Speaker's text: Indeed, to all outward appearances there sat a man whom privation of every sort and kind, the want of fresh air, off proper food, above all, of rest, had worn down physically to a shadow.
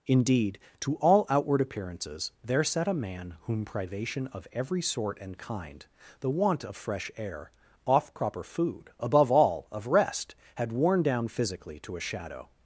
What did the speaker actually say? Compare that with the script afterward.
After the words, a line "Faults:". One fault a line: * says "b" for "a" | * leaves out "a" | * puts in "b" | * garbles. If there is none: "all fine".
Indeed, to all outward appearances there sat a man whom privation of every sort and kind, the want of fresh air, off proper food, above all, of rest, had worn down physically to a shadow.
Faults:
all fine